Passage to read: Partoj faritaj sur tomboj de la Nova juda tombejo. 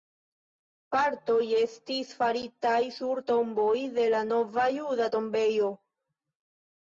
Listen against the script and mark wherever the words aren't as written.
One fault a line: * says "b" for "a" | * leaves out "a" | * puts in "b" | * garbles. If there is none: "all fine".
* puts in "estis"